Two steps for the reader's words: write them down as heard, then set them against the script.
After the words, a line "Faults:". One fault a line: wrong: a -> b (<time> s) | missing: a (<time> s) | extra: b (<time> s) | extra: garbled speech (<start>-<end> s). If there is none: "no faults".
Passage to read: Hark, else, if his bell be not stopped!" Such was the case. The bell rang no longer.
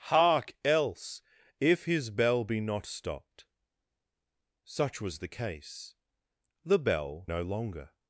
Hark, else, if his bell be not stopped!" Such was the case. The bell no longer.
Faults:
missing: rang (7.3 s)